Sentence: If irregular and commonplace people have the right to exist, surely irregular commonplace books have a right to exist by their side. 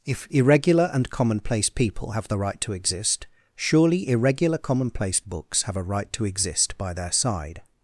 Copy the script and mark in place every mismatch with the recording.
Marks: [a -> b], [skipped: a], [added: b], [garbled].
If irregular and commonplace people have the right to exist, surely irregular commonplace books have a right to exist by their side.